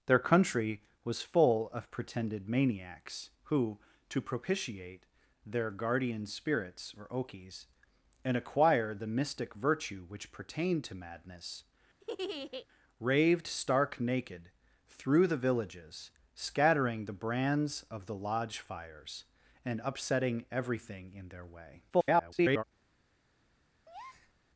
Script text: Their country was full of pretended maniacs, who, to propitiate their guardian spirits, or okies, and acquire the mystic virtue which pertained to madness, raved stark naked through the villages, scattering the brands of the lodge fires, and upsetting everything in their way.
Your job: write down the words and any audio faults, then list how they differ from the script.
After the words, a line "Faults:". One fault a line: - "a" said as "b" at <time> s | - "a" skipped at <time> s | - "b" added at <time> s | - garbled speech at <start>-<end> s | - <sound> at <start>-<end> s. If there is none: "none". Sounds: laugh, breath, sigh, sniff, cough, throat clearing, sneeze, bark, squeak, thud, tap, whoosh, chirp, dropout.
Their country was full of pretended maniacs, who, to propitiate their guardian spirits, or okies, and acquire the mystic virtue which pertained to madness, raved stark naked through the villages, scattering the brands of the lodge fires, and upsetting everything in their way. [garbled]
Faults:
- laugh at 12.0-12.7 s
- garbled speech at 21.9-22.6 s
- breath at 23.9-24.3 s